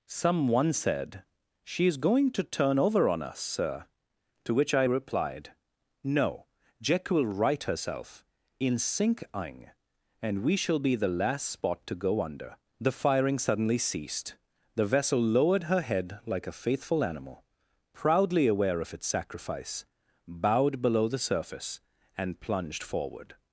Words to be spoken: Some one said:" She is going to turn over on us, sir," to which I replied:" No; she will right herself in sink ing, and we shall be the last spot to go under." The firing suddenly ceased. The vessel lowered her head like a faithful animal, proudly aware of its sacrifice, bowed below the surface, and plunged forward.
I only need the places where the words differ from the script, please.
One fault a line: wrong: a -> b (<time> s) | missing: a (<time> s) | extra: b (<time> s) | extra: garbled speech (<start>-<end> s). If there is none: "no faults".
wrong: she -> jack (6.8 s)